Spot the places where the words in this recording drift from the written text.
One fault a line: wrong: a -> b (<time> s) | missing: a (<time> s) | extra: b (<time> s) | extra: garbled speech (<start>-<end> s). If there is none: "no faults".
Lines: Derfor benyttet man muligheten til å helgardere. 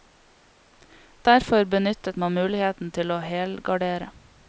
no faults